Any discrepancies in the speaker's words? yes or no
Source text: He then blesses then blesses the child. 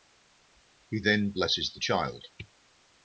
yes